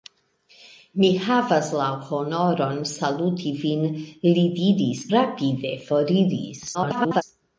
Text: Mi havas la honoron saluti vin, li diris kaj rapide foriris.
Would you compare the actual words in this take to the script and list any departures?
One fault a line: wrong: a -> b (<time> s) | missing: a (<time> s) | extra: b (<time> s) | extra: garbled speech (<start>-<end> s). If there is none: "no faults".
missing: kaj (5.0 s)
extra: garbled speech (6.7-7.2 s)